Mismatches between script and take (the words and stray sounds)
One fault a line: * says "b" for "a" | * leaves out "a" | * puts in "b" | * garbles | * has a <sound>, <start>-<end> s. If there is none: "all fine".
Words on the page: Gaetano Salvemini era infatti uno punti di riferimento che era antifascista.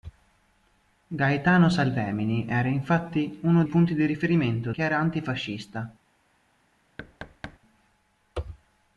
* has a thud, 7.0-7.6 s